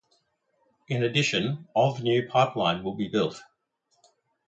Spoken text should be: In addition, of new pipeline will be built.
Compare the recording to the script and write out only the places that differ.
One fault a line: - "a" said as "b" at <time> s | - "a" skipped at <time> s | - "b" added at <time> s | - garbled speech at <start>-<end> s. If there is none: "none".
none